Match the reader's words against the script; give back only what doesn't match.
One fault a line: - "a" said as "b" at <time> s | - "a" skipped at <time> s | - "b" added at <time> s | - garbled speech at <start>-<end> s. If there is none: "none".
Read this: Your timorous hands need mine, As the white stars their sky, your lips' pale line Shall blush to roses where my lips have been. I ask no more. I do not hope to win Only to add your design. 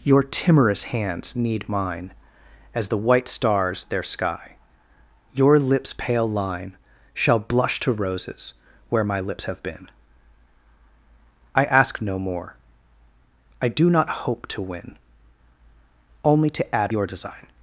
none